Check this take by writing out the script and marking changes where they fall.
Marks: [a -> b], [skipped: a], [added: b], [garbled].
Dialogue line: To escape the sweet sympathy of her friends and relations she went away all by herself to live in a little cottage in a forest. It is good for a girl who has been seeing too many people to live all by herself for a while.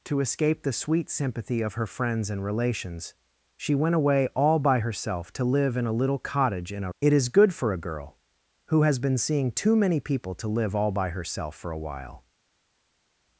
To escape the sweet sympathy of her friends and relations she went away all by herself to live in a little cottage in a [skipped: forest.] It is good for a girl who has been seeing too many people to live all by herself for a while.